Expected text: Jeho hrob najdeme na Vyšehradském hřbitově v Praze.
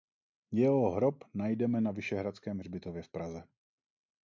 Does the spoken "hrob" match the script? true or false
true